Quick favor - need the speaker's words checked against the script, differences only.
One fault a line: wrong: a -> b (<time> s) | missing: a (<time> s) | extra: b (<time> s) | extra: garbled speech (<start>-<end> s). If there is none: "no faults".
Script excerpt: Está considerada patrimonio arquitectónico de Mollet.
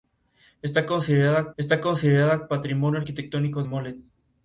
extra: está considerada (1.6 s)
missing: de (3.6 s)